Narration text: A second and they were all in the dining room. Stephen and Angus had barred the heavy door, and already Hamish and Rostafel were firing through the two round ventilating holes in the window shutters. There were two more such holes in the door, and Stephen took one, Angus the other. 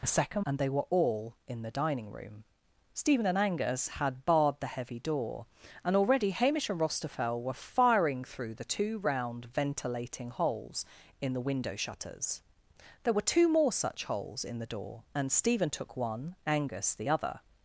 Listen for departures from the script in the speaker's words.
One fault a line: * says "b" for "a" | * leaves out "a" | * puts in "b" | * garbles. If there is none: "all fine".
all fine